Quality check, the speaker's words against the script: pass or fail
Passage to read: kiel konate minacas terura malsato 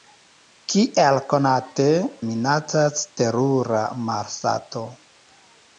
pass